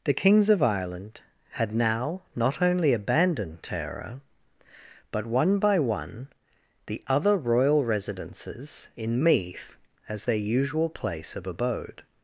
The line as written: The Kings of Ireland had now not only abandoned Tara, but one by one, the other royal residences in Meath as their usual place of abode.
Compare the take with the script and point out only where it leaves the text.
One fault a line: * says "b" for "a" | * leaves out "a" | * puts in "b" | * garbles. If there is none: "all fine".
all fine